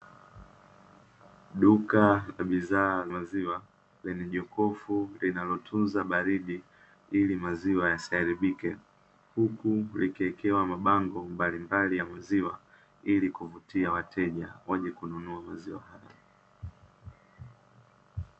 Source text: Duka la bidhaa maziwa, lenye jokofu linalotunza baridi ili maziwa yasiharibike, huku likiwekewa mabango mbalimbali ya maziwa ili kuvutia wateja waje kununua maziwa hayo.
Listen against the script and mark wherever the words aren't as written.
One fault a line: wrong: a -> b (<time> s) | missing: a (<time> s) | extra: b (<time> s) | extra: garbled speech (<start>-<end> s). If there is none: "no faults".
no faults